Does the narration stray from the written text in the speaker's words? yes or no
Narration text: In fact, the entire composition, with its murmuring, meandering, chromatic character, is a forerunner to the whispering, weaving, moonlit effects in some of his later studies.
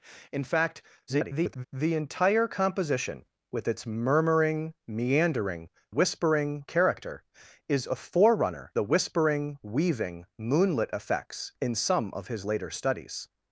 yes